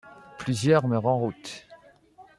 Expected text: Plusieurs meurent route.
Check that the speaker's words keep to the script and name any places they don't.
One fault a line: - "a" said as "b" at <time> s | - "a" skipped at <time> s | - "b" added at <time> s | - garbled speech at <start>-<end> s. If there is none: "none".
- "en" added at 1.1 s